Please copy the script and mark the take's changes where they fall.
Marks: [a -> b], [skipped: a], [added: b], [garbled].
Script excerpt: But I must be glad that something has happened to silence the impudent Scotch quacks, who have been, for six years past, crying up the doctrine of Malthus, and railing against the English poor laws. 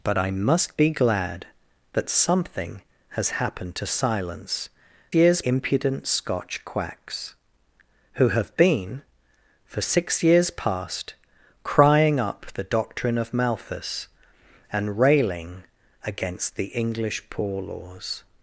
But I must be glad that something has happened to silence [the -> years] impudent Scotch quacks, who have been, for six years past, crying up the doctrine of Malthus, and railing against the English poor laws.